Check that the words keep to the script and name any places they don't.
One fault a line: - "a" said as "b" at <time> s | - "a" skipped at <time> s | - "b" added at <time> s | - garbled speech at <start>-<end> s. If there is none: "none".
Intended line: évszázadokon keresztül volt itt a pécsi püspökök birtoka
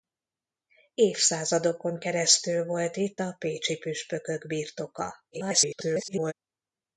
- garbled speech at 5.3-6.3 s